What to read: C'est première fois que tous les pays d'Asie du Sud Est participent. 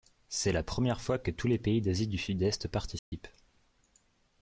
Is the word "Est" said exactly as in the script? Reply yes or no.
yes